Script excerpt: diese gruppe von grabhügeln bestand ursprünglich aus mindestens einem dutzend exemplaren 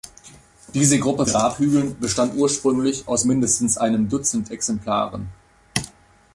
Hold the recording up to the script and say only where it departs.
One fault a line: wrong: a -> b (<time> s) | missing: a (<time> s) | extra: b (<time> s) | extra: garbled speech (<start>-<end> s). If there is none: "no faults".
missing: von (1.3 s)